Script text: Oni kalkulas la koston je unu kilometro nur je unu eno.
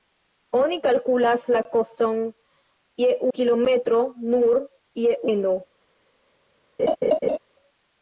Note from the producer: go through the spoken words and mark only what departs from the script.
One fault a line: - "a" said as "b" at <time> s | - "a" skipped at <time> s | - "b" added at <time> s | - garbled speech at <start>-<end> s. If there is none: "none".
- "unu" skipped at 3.1 s
- "unu" skipped at 5.2 s